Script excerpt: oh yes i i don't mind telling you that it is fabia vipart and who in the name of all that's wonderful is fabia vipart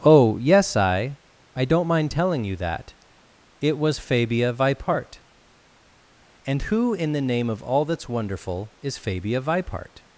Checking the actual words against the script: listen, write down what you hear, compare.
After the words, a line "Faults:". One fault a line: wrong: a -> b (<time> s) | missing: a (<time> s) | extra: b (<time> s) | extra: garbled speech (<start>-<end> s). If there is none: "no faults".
oh yes i i don't mind telling you that it was fabia vipart and who in the name of all that's wonderful is fabia vipart
Faults:
wrong: is -> was (3.8 s)